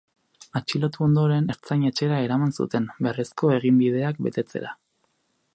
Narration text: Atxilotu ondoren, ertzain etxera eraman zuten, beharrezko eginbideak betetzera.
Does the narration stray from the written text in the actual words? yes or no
no